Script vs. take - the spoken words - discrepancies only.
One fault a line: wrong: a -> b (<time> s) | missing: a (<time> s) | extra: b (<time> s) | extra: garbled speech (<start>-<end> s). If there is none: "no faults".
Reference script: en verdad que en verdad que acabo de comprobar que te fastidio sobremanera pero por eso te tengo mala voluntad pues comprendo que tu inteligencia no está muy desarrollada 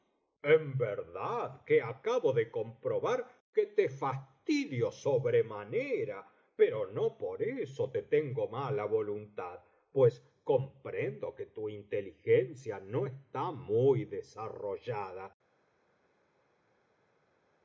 missing: en verdad que (1.8 s)
extra: no (6.9 s)